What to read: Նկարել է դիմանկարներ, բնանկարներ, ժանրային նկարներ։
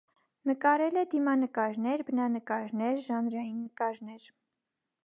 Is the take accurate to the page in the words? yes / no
yes